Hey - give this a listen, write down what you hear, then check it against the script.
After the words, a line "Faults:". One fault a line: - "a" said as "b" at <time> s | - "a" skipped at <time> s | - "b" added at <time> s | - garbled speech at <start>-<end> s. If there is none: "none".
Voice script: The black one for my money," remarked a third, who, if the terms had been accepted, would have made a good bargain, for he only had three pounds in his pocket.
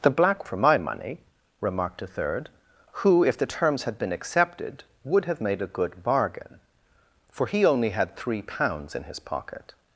The black for my money," remarked a third, who, if the terms had been accepted, would have made a good bargain, for he only had three pounds in his pocket.
Faults:
- "one" skipped at 0.5 s